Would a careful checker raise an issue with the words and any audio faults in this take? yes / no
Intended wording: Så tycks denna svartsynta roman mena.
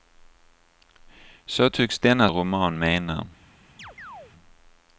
yes